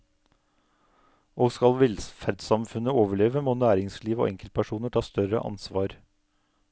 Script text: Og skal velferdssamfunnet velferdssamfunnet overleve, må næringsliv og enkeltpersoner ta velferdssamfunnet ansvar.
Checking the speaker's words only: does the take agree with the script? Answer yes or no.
no